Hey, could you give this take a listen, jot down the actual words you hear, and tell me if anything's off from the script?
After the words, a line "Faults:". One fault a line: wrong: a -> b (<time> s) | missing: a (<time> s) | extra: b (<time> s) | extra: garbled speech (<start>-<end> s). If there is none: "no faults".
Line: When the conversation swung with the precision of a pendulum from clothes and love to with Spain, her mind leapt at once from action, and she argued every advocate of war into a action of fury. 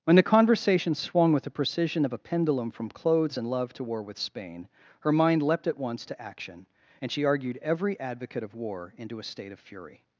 When the conversation swung with the precision of a pendulum from clothes and love to war with Spain, her mind leapt at once to action, and she argued every advocate of war into a state of fury.
Faults:
extra: war (3.8 s)
wrong: from -> to (6.0 s)
wrong: action -> state (9.2 s)